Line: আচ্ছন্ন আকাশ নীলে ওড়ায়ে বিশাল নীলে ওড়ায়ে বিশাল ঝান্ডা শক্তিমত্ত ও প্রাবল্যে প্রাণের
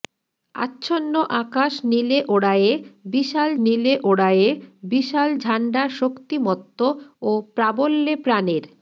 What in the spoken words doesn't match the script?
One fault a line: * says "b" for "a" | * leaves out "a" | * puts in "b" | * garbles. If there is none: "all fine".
all fine